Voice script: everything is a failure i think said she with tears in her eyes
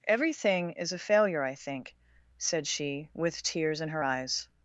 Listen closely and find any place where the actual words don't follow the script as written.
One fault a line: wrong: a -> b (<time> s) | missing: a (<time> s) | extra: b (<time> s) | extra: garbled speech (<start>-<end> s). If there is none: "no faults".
no faults